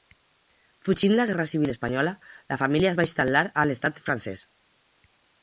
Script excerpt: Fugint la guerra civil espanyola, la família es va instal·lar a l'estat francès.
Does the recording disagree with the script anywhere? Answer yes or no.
no